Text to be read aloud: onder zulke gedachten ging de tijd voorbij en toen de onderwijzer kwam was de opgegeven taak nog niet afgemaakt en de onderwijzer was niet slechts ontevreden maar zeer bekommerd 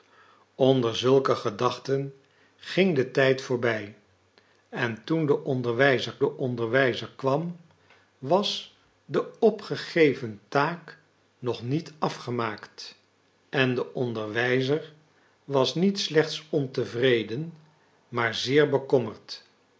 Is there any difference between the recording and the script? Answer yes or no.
yes